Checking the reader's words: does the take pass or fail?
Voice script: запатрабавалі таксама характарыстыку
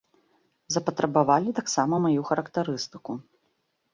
fail